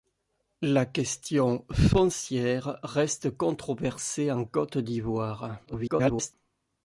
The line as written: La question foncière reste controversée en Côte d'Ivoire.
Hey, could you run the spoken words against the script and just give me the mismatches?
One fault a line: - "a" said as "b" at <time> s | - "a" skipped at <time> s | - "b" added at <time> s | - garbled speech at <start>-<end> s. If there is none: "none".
- garbled speech at 5.6-6.3 s